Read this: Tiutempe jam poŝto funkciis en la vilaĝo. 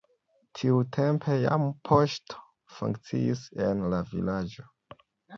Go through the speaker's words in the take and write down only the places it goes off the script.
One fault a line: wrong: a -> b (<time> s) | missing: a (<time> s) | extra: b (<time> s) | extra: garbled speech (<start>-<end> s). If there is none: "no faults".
no faults